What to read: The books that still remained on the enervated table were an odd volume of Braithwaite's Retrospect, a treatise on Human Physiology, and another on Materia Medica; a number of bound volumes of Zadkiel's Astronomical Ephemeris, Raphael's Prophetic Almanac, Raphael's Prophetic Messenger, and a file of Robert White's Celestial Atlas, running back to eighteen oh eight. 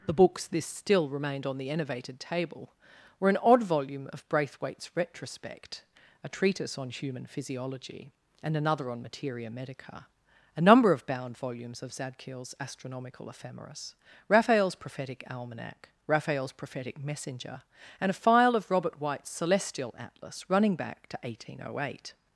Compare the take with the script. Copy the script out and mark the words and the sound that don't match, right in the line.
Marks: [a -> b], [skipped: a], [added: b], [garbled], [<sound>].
The books [that -> this] still remained on the enervated table were an odd volume of Braithwaite's Retrospect, a treatise on Human Physiology, and another on Materia Medica; a number of bound volumes of Zadkiel's Astronomical Ephemeris, Raphael's Prophetic Almanac, Raphael's Prophetic Messenger, and a file of Robert White's Celestial Atlas, running back to eighteen oh eight.